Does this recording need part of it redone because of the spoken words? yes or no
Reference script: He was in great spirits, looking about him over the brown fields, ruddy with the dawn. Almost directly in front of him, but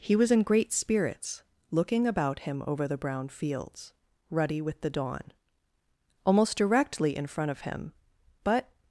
no